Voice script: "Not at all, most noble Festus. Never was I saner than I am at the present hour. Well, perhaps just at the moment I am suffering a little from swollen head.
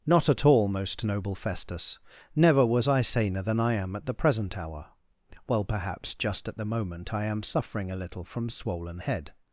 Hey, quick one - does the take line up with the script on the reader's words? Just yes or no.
yes